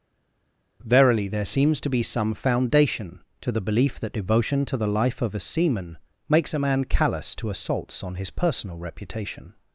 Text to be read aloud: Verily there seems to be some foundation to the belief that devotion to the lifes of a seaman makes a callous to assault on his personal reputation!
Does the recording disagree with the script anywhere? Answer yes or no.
yes